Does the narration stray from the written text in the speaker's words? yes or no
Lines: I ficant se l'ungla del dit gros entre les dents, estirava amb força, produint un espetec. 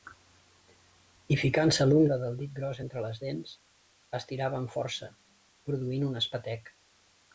no